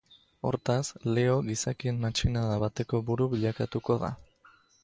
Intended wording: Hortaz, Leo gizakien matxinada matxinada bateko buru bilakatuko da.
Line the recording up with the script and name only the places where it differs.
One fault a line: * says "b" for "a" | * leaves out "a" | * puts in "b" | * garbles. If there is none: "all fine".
* leaves out "matxinada"